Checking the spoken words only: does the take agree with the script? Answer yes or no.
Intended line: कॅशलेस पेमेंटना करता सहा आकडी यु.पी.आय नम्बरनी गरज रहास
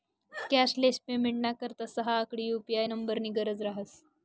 yes